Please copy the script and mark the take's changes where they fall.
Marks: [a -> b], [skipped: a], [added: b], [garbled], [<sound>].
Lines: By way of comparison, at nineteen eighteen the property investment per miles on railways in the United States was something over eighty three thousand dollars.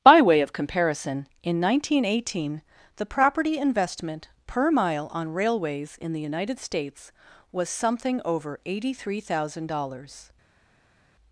By way of comparison, [at -> in] nineteen eighteen the property investment per [miles -> mile] on railways in the United States was something over eighty three thousand dollars.